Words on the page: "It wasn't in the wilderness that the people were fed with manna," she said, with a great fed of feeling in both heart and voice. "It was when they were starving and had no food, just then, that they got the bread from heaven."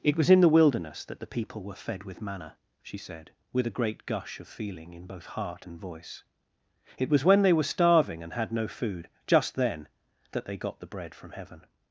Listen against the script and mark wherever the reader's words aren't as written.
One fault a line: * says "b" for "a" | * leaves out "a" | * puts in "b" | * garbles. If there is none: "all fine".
* says "was" for "wasn't"
* says "gush" for "fed"